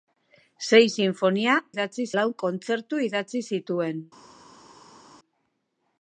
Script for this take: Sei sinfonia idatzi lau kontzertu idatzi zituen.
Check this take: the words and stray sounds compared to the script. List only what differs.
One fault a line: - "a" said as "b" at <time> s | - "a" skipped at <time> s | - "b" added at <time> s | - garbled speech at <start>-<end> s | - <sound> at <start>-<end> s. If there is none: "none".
none